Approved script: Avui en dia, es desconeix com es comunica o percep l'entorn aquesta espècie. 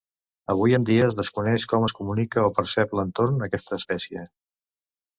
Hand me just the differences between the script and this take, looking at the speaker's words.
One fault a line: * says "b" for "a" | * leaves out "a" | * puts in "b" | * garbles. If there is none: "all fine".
all fine